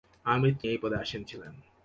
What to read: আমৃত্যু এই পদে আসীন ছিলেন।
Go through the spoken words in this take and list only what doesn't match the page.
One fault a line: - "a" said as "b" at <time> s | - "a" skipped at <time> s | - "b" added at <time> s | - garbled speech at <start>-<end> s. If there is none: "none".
none